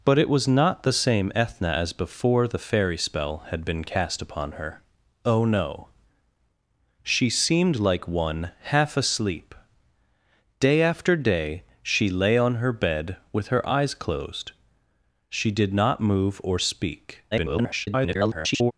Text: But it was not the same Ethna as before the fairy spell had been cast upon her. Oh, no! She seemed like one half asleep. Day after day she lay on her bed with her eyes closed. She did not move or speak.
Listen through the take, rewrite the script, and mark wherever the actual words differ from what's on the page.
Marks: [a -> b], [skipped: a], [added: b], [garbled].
But it was not the same Ethna as before the fairy spell had been cast upon her. Oh, no! She seemed like one half asleep. Day after day she lay on her bed with her eyes closed. She did not move or speak. [garbled]